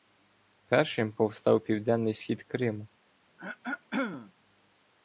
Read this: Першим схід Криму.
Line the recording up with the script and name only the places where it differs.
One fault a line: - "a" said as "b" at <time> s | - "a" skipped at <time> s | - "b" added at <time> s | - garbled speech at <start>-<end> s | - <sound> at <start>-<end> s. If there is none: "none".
- "повстав південний" added at 1.1 s
- throat clearing at 3.4-4.3 s